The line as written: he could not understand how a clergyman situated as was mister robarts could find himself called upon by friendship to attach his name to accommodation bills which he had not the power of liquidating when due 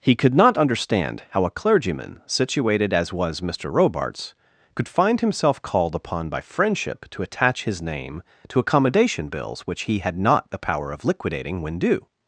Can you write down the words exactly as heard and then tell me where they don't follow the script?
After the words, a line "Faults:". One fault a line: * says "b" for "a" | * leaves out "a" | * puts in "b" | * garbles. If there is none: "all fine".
he could not understand how a clergyman situated as was mister robarts could find himself called upon by friendship to attach his name to accommodation bills which he had not the power of liquidating when due
Faults:
all fine